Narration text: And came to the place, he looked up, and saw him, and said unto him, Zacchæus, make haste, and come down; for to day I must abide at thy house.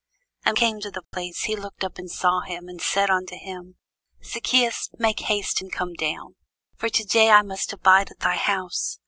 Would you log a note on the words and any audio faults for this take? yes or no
yes